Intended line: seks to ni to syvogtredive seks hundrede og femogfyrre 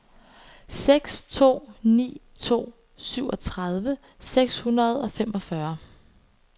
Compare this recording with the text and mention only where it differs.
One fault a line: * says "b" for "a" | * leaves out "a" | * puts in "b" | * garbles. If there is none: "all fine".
all fine